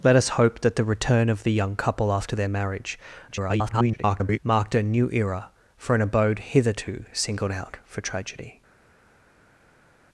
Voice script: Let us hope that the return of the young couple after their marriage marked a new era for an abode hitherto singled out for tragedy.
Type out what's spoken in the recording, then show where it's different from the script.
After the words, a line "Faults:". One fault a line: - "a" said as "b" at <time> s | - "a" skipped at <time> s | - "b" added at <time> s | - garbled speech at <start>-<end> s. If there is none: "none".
Let us hope that the return of the young couple after their marriage [garbled] marked a new era for an abode hitherto singled out for tragedy.
Faults:
- garbled speech at 3.3-4.4 s